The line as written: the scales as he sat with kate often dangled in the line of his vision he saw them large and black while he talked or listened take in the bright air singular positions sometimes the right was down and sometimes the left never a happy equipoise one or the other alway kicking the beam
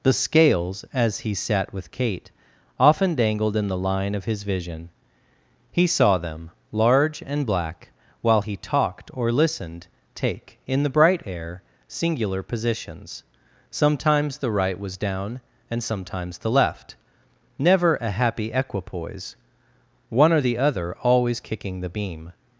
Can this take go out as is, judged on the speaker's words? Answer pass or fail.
fail